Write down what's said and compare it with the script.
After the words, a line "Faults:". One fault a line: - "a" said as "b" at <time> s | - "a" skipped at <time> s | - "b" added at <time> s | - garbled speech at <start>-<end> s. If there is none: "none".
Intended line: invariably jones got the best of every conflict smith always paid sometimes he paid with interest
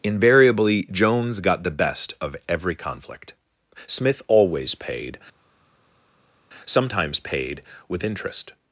invariably jones got the best of every conflict smith always paid sometimes paid with interest
Faults:
- "he" skipped at 7.2 s